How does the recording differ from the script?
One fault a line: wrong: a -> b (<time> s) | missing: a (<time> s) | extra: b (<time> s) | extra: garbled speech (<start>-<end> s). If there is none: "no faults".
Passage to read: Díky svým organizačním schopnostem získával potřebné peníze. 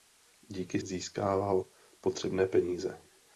missing: svým organizačním schopnostem (0.8 s)